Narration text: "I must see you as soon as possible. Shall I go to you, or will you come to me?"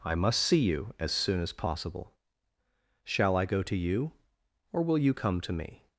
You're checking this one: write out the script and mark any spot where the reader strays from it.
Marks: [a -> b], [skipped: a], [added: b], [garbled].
"I must see you as soon as possible. Shall I go to you, or will you come to me?"